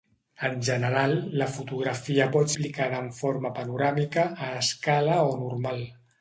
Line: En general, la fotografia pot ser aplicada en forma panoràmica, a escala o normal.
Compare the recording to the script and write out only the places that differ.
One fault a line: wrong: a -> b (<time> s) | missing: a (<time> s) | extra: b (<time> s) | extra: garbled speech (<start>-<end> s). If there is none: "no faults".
missing: ser (2.5 s)